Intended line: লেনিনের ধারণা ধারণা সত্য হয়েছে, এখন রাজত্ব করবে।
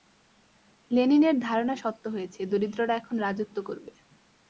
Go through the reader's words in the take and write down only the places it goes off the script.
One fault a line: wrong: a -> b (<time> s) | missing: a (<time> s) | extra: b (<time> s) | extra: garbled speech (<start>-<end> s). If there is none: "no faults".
missing: ধারণা (1.8 s)
extra: দরিদ্ররা (2.5 s)